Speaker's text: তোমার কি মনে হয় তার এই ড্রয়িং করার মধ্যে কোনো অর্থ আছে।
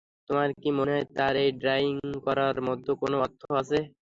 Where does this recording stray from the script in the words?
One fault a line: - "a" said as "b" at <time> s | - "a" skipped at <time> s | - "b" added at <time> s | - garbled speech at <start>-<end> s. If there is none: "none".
none